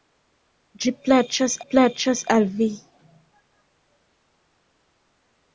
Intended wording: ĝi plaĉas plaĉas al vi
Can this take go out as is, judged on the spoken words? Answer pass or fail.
pass